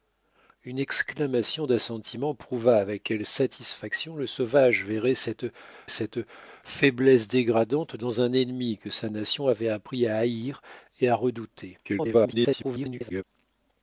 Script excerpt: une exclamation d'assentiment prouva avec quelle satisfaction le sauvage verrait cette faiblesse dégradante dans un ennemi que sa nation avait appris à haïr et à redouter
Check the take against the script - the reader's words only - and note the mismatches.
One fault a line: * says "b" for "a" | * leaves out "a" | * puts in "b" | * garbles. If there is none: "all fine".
* puts in "cette"
* garbles